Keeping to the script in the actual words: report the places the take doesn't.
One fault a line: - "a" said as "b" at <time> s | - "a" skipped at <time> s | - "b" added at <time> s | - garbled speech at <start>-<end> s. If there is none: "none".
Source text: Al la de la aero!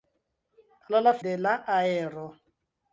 none